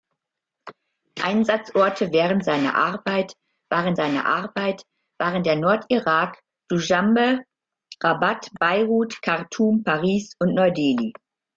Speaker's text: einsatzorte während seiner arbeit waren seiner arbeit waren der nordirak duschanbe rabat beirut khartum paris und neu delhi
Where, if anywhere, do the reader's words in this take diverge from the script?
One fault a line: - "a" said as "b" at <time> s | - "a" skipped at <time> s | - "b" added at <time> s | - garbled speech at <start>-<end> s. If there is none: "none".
none